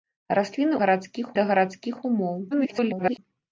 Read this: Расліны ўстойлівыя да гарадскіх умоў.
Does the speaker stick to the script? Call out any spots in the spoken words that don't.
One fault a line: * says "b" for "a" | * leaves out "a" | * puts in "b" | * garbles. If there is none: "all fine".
* says "гарадскіх" for "ўстойлівыя"
* garbles